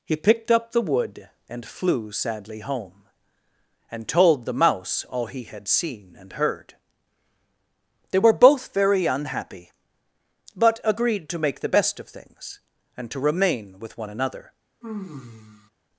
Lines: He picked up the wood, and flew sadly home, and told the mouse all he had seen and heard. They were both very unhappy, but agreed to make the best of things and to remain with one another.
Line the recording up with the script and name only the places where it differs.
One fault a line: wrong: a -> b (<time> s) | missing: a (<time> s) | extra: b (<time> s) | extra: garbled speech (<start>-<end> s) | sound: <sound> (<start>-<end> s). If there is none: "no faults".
sound: sigh (14.8-15.7 s)